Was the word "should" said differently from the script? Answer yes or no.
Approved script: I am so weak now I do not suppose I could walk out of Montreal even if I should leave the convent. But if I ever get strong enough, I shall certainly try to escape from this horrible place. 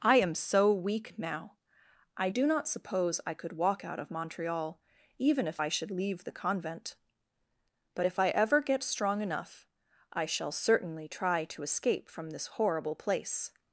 no